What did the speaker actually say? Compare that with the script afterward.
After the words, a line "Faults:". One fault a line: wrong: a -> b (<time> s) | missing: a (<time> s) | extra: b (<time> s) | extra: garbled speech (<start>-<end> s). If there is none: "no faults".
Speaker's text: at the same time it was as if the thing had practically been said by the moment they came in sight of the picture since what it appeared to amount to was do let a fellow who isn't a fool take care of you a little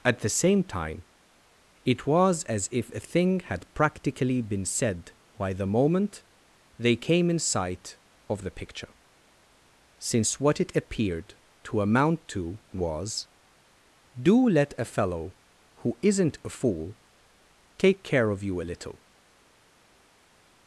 at the same time it was as if a thing had practically been said by the moment they came in sight of the picture since what it appeared to amount to was do let a fellow who isn't a fool take care of you a little
Faults:
wrong: the -> a (2.9 s)